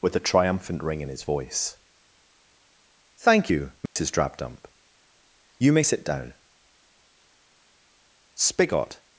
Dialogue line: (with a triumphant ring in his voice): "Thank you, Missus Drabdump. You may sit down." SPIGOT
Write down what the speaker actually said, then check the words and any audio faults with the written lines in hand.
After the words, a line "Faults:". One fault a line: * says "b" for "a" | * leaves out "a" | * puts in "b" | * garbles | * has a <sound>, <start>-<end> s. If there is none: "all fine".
(with a triumphant ring in his voice): "Thank you, Missus Drabdump. You may sit down." SPIGOT
Faults:
* has a dropout, 3.9-4.0 s